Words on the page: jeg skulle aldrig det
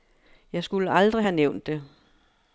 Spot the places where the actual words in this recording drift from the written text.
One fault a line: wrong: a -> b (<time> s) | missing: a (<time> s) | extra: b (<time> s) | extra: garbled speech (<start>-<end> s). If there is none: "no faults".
extra: have nævnt (1.2 s)